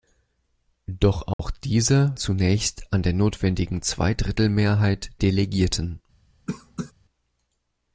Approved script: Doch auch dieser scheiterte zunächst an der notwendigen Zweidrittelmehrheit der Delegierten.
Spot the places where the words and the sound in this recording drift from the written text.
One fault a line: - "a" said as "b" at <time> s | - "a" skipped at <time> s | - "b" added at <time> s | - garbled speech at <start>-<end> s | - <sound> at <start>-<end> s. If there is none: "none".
- dropout at 1.3-1.4 s
- "scheiterte" skipped at 2.1 s
- "der" skipped at 5.1 s
- cough at 6.5-6.9 s